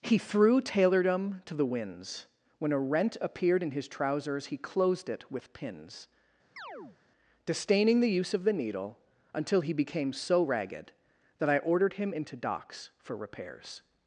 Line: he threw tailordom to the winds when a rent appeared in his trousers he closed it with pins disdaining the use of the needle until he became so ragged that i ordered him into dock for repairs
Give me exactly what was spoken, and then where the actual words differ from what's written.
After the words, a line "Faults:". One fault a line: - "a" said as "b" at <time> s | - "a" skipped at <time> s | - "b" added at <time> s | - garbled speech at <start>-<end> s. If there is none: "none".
he threw tailordom to the winds when a rent appeared in his trousers he closed it with pins disdaining the use of the needle until he became so ragged that i ordered him into docks for repairs
Faults:
- "dock" said as "docks" at 12.4 s